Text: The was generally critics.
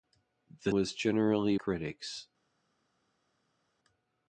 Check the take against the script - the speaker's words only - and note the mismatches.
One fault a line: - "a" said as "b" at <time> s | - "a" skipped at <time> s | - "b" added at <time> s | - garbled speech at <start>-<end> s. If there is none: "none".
none